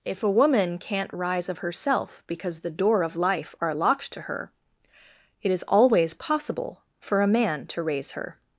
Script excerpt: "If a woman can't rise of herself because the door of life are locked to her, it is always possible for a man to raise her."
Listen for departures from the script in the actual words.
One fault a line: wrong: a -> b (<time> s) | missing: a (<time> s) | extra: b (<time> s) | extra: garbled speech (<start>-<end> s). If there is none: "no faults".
no faults